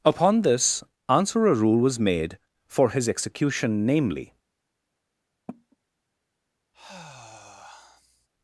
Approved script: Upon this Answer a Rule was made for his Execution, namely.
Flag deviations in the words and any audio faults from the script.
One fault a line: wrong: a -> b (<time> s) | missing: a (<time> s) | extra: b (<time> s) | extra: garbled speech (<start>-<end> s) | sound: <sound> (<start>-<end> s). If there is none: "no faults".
sound: cough (5.5-5.8 s)
sound: sigh (6.7-8.3 s)